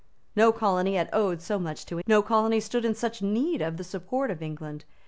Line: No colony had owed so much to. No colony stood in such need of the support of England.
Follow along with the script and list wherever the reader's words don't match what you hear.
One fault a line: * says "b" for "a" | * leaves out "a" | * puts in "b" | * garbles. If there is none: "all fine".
all fine